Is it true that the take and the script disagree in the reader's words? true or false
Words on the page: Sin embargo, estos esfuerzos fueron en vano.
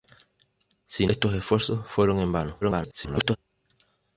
true